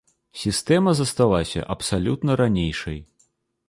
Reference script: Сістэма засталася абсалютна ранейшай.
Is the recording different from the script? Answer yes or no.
no